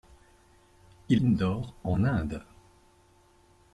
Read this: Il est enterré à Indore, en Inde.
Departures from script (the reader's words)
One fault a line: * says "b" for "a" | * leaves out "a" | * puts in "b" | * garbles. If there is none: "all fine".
* leaves out "est enterré à"